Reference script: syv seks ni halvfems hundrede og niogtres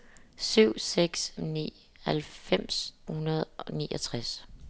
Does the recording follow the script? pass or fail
pass